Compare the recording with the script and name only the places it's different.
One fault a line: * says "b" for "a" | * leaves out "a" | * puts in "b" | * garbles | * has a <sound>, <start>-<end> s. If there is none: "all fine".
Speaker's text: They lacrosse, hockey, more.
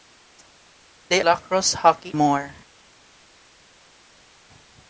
all fine